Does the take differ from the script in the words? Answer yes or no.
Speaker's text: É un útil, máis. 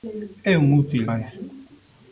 no